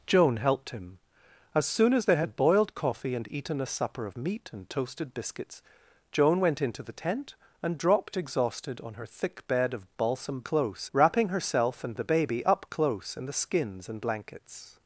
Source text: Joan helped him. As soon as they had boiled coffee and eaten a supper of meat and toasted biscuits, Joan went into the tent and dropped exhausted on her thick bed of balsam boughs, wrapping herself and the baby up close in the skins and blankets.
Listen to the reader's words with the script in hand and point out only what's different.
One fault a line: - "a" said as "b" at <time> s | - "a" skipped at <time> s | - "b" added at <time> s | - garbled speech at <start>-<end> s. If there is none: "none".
- "boughs" said as "close" at 10.4 s